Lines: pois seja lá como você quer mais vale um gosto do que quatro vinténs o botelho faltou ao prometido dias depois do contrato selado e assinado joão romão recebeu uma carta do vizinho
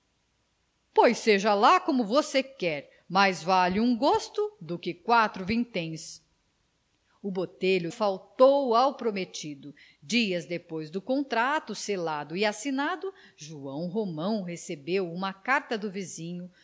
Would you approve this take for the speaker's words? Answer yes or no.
yes